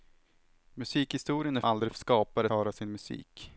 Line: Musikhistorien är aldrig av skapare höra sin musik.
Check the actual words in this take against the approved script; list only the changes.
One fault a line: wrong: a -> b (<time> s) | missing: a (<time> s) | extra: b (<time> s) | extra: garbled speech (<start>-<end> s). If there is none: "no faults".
no faults